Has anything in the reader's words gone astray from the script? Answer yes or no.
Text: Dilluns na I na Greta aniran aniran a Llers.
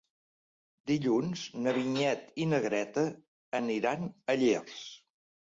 yes